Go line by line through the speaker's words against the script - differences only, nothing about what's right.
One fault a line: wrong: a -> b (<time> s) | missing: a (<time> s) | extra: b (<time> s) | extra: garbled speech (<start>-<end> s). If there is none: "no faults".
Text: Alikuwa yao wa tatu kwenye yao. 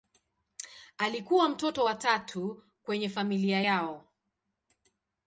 wrong: yao -> mtoto (1.5 s)
extra: familia (3.1 s)